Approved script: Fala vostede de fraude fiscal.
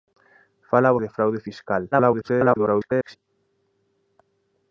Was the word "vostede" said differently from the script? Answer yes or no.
yes